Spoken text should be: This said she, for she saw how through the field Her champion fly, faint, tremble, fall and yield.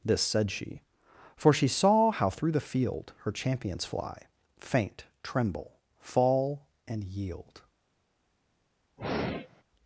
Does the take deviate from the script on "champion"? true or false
true